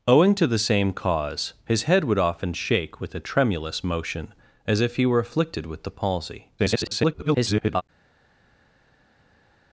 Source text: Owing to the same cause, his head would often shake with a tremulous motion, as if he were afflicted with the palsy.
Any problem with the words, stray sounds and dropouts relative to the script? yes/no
yes